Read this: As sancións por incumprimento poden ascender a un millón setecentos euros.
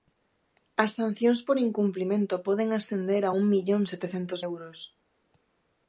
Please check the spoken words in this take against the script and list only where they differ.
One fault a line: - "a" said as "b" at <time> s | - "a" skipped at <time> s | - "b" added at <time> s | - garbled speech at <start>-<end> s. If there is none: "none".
none